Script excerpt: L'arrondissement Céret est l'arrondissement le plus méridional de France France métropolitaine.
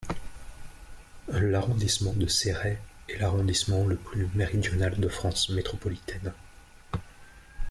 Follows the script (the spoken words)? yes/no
no